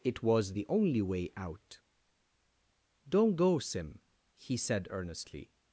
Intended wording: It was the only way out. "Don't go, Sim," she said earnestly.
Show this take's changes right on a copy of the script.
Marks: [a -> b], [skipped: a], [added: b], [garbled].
It was the only way out. "Don't go, Sim," [she -> he] said earnestly.